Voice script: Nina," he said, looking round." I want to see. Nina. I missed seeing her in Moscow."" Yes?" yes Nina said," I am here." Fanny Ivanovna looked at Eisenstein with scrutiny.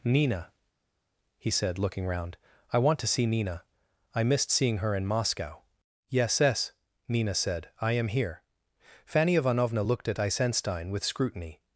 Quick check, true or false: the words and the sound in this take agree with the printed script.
true